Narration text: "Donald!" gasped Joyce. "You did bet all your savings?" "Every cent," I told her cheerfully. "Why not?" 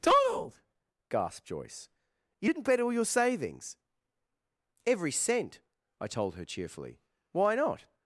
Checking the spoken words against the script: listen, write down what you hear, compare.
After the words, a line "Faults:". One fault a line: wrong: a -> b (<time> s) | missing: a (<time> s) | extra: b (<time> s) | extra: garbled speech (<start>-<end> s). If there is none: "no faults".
"Donald!" gasped Joyce. "You didn't bet all your savings?" "Every cent," I told her cheerfully. "Why not?"
Faults:
wrong: did -> didn't (2.4 s)